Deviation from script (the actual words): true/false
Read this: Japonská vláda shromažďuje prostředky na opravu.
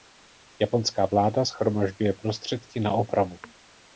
false